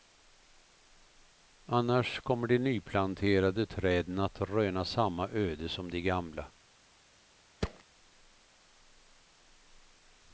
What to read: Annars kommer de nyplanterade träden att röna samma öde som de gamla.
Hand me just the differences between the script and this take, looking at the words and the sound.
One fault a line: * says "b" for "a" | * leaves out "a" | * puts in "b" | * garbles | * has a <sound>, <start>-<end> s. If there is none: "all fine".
* has a thud, 7.6-7.8 s